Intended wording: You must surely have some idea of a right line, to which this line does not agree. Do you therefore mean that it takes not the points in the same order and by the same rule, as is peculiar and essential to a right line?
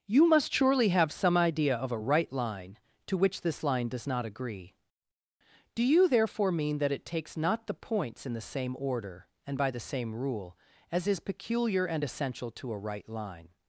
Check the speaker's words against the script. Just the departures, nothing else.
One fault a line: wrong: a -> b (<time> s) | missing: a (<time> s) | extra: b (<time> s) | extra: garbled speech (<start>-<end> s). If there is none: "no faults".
no faults